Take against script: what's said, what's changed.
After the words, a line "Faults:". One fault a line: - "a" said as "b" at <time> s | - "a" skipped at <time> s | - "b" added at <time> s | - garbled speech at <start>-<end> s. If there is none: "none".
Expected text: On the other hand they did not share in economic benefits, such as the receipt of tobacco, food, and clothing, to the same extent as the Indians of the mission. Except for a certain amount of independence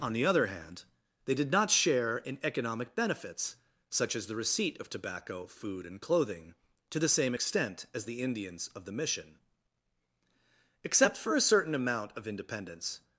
On the other hand they did not share in economic benefits, such as the receipt of tobacco, food, and clothing, to the same extent as the Indians of the mission. Except for a certain amount of independence
Faults:
none